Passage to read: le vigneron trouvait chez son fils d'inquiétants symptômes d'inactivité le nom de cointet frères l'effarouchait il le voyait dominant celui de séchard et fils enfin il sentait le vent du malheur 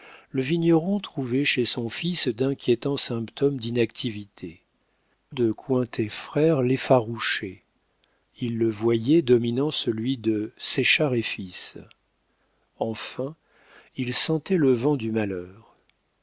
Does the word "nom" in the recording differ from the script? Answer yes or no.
yes